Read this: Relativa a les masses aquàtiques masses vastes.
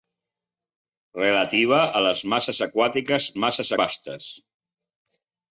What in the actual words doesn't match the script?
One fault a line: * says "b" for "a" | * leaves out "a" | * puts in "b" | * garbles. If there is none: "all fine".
all fine